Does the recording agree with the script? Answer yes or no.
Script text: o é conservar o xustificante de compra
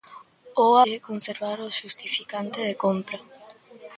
yes